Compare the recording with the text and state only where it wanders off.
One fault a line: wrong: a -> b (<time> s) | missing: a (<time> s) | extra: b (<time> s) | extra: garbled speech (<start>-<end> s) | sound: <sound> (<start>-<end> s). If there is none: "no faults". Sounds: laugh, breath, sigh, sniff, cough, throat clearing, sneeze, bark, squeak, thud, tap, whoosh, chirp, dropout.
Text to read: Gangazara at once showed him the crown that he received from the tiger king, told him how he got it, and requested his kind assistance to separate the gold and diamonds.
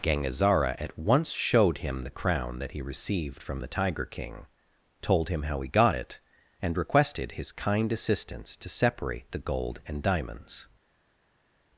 no faults